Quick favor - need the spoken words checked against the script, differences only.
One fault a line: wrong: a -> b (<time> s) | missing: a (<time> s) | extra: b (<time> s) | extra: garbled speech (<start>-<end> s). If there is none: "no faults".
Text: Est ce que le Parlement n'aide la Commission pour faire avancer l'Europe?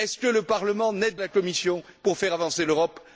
no faults